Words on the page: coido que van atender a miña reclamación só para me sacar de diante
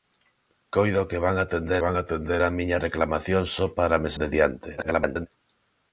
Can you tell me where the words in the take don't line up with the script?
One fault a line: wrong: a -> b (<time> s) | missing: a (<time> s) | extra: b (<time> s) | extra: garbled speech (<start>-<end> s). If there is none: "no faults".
extra: van atender (1.8 s)
missing: sacar (4.1 s)
extra: garbled speech (4.8-5.3 s)